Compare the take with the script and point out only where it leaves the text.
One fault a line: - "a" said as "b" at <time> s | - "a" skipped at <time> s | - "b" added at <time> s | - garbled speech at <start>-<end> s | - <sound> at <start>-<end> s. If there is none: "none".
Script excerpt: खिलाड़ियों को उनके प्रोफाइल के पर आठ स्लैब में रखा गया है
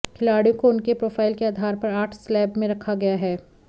- "आधार" added at 1.4 s